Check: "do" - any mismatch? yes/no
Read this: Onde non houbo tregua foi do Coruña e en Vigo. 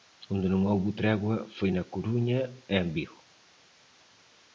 yes